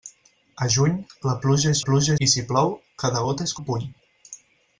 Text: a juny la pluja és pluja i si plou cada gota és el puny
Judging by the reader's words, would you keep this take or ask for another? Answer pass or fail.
pass